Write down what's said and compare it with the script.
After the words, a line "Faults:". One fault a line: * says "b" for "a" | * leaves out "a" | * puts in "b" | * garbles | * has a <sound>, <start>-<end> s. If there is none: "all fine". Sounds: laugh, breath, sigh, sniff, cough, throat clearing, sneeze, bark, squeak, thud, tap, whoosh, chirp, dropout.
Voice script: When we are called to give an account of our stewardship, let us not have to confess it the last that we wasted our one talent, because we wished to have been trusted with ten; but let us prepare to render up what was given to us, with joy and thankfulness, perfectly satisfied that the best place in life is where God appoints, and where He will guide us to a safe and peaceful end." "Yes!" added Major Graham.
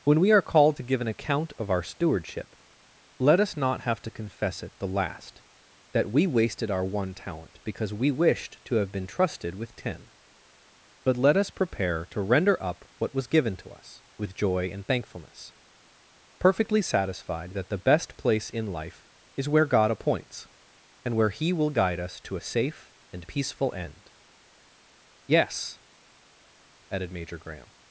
When we are called to give an account of our stewardship, let us not have to confess it the last that we wasted our one talent, because we wished to have been trusted with ten; but let us prepare to render up what was given to us, with joy and thankfulness, perfectly satisfied that the best place in life is where God appoints, and where He will guide us to a safe and peaceful end." "Yes!" added Major Graham.
Faults:
all fine